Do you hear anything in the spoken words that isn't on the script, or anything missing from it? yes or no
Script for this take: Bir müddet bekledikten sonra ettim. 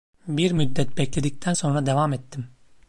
yes